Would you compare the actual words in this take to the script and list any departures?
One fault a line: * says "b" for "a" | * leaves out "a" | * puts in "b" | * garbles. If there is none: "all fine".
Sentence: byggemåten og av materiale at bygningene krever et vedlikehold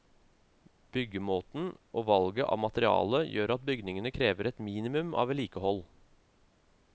* puts in "valget"
* puts in "gjør"
* puts in "minimum av"